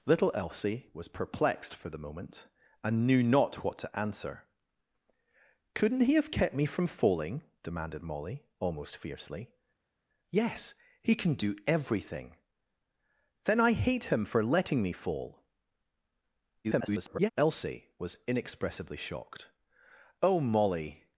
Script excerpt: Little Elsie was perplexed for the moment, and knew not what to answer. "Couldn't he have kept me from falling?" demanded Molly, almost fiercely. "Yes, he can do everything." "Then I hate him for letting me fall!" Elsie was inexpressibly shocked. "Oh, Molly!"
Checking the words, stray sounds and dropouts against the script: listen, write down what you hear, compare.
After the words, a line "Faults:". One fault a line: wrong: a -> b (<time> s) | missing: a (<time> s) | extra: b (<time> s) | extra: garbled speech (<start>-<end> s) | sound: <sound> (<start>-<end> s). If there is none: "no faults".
Little Elsie was perplexed for the moment, and knew not what to answer. "Couldn't he have kept me from falling?" demanded Molly, almost fiercely. "Yes, he can do everything." "Then I hate him for letting me fall!" [garbled] Elsie was inexpressibly shocked. "Oh, Molly!"
Faults:
extra: garbled speech (16.6-17.3 s)